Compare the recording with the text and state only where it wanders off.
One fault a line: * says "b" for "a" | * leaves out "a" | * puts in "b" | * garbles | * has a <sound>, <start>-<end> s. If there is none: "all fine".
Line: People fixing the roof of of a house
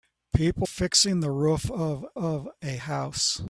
all fine